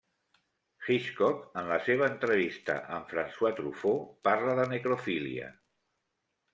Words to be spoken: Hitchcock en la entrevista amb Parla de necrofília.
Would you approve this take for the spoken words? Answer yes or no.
no